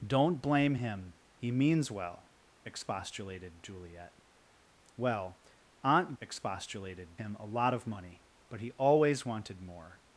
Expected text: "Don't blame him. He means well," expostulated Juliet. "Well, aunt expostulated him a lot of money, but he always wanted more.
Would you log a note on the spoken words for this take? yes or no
no